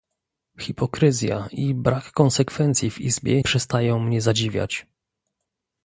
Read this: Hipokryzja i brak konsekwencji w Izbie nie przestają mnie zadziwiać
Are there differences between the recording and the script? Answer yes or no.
yes